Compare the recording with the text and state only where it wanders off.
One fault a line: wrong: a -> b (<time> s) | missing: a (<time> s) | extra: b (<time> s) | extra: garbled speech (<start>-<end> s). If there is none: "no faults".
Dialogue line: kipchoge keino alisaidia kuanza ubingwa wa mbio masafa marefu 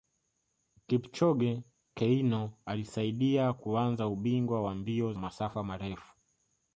no faults